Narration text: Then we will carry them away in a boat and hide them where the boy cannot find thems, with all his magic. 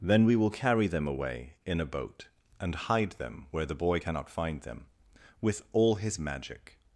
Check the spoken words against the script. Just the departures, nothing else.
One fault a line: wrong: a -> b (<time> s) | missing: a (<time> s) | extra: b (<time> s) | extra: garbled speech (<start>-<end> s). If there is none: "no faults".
wrong: thems -> them (4.6 s)